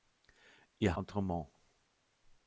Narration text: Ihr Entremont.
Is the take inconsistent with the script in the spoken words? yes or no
no